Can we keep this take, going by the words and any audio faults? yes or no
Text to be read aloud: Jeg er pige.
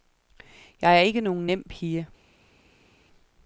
no